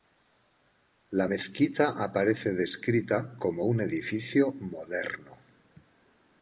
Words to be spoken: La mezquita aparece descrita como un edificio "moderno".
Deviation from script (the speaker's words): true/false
false